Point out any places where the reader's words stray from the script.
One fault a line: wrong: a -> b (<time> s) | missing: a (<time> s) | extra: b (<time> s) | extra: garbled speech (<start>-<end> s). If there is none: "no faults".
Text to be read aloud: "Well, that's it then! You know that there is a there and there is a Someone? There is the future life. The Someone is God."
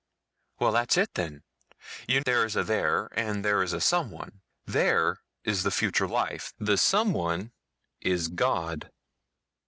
missing: know that (2.2 s)